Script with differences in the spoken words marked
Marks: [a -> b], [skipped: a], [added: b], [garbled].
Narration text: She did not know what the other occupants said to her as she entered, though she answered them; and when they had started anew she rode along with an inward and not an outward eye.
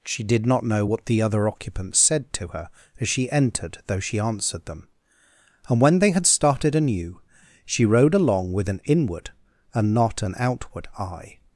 She did not know what the other occupants said to her as she entered, though she answered them; and when they had started anew she rode along with an inward and not an outward eye.